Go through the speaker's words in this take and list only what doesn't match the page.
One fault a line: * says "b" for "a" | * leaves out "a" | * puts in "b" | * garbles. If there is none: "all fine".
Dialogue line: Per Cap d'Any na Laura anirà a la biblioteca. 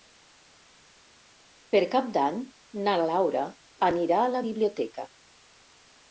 all fine